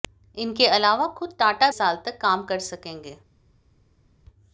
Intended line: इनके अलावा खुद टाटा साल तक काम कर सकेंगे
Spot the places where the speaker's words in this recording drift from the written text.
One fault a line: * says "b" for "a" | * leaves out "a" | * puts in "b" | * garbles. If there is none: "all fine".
all fine